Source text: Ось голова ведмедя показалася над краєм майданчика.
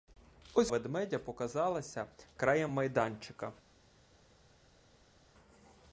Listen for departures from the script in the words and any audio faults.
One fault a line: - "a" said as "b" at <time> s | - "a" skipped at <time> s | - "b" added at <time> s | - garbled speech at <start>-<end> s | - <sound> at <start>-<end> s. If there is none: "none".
- "голова" skipped at 0.7 s
- "над" skipped at 2.1 s